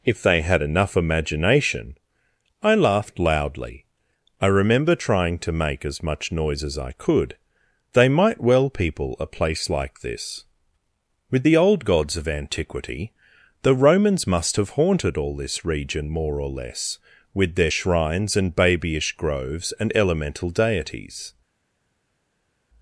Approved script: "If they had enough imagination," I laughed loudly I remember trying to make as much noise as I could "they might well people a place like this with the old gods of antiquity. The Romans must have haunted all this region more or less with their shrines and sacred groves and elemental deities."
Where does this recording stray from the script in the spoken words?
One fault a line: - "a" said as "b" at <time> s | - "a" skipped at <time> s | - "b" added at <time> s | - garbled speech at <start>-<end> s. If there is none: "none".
- "sacred" said as "babyish" at 18.5 s